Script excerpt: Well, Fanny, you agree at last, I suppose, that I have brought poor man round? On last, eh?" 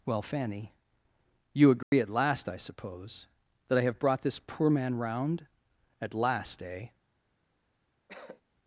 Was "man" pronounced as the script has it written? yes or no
yes